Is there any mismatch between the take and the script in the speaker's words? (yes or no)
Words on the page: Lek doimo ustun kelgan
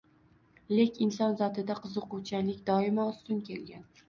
yes